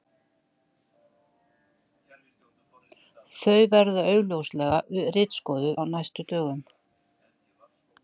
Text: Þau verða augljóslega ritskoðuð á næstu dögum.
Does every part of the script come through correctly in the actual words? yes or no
yes